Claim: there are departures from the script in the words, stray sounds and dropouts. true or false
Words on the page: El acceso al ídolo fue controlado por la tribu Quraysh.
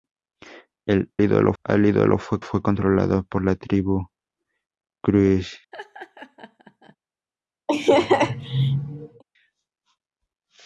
true